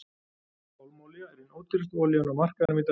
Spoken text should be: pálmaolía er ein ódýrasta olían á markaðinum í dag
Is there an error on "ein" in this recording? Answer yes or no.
no